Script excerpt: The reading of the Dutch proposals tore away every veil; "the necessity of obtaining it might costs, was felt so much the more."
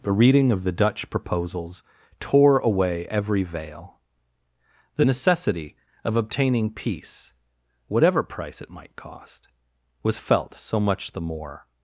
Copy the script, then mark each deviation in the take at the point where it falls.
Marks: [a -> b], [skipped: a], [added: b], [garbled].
The reading of the Dutch proposals tore away every veil; "the necessity of obtaining [added: peace whatever price] it might [costs, -> cost] was felt so much the more."